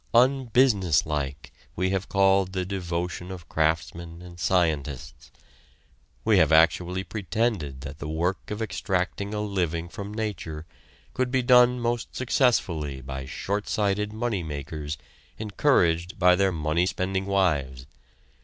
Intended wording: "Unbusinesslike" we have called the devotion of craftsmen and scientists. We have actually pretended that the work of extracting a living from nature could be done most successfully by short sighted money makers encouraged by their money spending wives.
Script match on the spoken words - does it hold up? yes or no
yes